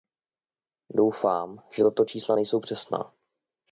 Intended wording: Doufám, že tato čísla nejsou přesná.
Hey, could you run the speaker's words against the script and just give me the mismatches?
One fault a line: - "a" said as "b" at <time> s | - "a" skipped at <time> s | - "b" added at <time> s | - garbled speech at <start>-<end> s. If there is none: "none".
none